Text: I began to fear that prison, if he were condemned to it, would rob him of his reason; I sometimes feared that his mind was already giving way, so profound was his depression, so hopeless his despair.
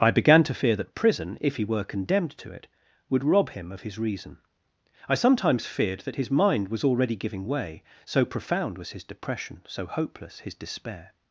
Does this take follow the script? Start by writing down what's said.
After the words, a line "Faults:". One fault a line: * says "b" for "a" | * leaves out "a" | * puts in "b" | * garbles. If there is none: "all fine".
I began to fear that prison, if he were condemned to it, would rob him of his reason; I sometimes feared that his mind was already giving way, so profound was his depression, so hopeless his despair.
Faults:
all fine